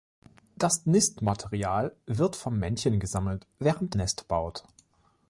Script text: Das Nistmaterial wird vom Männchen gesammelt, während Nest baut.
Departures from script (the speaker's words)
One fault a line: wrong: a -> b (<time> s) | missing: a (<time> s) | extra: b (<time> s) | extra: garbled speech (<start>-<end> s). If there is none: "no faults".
no faults